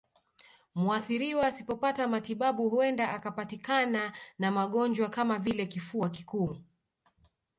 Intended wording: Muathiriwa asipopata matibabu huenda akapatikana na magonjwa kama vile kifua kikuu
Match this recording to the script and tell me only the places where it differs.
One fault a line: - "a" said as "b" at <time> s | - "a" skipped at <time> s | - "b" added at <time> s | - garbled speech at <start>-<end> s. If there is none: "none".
none